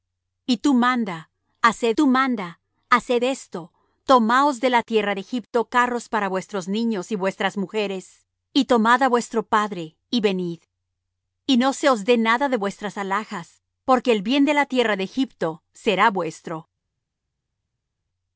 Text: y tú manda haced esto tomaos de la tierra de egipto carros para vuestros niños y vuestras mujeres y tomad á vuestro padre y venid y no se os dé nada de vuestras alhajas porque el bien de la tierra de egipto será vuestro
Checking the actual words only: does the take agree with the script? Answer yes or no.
no